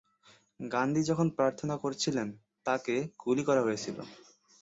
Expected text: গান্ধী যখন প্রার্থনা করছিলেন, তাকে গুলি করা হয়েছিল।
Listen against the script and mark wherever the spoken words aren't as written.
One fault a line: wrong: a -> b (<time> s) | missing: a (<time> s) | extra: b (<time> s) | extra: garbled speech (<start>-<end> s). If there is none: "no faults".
no faults